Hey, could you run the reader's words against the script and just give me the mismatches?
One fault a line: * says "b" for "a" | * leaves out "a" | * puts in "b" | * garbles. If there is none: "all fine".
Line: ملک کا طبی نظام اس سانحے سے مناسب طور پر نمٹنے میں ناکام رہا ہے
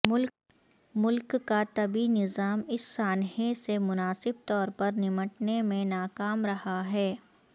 all fine